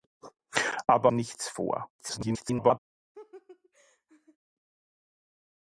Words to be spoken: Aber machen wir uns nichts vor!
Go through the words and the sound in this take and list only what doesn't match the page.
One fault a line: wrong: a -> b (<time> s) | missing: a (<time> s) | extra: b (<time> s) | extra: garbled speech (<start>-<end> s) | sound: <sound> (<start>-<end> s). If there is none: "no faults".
missing: machen wir uns (1.1 s)
extra: garbled speech (2.0-2.8 s)
sound: laugh (3.1-4.4 s)